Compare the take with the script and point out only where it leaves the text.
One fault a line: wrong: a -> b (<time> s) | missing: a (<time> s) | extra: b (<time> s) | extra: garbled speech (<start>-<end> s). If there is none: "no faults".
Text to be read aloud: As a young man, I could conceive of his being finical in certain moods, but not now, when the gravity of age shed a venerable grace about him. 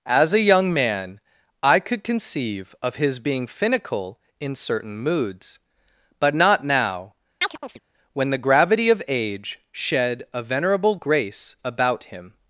no faults